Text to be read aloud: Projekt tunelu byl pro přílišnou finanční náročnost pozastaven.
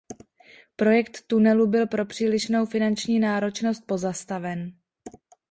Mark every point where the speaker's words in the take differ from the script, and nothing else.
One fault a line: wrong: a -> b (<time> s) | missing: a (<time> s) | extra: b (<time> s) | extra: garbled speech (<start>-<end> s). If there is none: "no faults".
no faults